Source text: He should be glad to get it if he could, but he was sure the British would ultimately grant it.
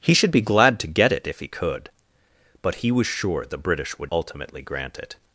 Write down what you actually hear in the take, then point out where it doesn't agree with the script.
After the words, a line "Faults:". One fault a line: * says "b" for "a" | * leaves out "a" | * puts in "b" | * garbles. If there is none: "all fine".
He should be glad to get it if he could, but he was sure the British would ultimately grant it.
Faults:
all fine